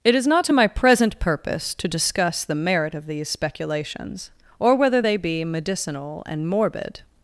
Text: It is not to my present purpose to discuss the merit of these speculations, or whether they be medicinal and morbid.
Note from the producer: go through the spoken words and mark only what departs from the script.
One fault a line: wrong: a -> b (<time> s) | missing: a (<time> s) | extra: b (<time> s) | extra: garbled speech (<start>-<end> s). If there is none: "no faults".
no faults